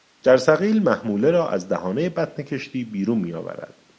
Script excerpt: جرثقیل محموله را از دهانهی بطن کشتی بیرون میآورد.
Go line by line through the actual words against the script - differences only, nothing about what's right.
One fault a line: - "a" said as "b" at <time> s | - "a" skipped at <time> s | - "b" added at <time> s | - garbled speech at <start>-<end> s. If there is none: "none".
none